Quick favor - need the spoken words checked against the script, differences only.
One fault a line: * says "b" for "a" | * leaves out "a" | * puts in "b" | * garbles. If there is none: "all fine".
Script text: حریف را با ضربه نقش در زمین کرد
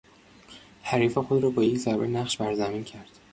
* puts in "خود"
* puts in "یک"
* says "بر" for "در"